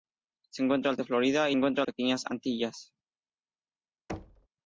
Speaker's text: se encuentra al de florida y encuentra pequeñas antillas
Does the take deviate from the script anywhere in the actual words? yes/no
no